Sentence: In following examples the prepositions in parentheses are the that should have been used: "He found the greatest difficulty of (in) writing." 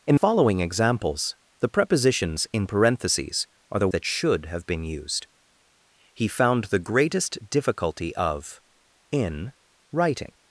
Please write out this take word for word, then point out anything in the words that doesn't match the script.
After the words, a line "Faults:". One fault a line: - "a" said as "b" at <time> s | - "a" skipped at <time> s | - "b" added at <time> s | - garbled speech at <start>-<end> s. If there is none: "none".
In following examples the prepositions in parentheses are the that should have been used: "He found the greatest difficulty of (in) writing."
Faults:
none